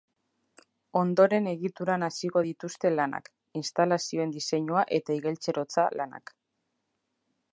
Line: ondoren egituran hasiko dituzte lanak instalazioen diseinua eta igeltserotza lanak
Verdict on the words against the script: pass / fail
pass